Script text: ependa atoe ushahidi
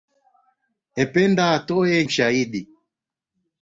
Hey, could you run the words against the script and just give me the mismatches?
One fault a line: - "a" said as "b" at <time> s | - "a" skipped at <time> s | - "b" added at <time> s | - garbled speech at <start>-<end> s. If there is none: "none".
none